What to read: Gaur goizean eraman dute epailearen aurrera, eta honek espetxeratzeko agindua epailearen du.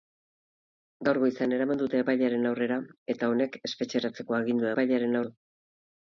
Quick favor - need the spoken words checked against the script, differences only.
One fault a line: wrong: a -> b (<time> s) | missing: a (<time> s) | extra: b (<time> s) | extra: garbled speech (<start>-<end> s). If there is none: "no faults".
no faults